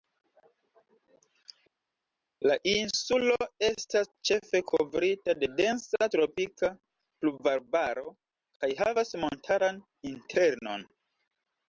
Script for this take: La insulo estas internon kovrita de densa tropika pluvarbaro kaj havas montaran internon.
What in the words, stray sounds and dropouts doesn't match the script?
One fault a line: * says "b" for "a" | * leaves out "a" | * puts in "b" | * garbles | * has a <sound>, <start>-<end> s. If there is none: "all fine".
* says "ĉefe" for "internon"